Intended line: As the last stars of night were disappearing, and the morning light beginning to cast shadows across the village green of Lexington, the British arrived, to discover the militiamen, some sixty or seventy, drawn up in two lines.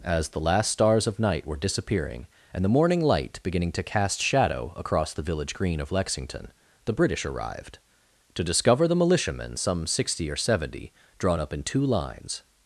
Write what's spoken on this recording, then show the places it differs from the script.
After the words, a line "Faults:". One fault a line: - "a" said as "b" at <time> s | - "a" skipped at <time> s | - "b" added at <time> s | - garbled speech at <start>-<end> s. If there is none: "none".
As the last stars of night were disappearing, and the morning light beginning to cast shadow across the village green of Lexington, the British arrived, to discover the militiamen, some sixty or seventy, drawn up in two lines.
Faults:
- "shadows" said as "shadow" at 4.2 s